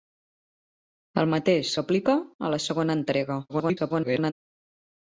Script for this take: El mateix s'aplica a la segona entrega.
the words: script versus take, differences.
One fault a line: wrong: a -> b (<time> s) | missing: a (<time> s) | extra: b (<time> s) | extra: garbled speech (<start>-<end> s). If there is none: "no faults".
extra: garbled speech (3.5-4.3 s)